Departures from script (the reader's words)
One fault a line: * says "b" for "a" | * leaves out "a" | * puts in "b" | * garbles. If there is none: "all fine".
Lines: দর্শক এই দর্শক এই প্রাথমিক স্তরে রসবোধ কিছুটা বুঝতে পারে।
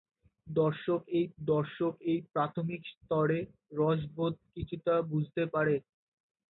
all fine